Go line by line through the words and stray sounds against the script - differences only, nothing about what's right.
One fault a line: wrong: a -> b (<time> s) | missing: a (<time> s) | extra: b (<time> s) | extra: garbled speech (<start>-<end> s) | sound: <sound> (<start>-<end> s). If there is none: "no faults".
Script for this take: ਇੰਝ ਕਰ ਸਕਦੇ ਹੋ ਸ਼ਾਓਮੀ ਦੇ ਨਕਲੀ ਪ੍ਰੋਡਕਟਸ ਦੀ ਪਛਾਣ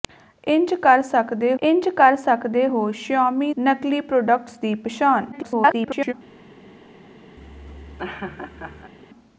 extra: ਇੰਝ ਕਰ ਸਕਦੇ (1.6 s)
missing: ਦੇ (3.5 s)
extra: garbled speech (5.3-6.1 s)
sound: laugh (7.4-8.9 s)